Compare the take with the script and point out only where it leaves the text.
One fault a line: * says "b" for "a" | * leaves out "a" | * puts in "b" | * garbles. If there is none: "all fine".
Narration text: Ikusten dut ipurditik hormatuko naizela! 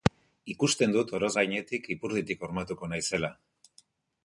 * puts in "oroz gainetik"